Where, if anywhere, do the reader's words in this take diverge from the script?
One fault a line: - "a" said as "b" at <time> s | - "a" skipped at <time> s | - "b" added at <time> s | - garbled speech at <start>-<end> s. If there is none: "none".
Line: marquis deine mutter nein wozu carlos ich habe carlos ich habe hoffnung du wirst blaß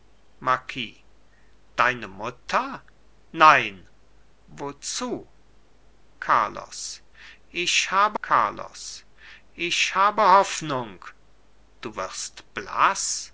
none